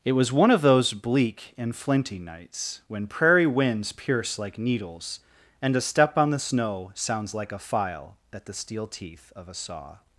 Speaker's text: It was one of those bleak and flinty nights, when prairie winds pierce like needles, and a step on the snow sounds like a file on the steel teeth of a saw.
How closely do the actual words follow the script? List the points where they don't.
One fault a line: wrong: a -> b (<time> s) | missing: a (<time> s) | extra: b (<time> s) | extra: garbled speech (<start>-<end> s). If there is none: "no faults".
wrong: on -> at (8.3 s)